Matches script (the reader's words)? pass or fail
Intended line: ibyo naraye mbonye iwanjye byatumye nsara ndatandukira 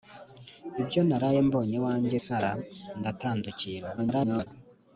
fail